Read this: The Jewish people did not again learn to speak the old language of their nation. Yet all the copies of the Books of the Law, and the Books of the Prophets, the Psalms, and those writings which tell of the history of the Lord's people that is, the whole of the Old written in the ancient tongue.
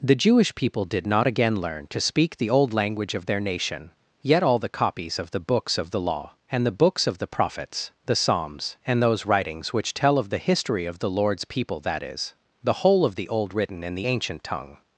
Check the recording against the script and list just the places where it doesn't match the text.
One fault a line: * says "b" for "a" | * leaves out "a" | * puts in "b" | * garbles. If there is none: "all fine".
all fine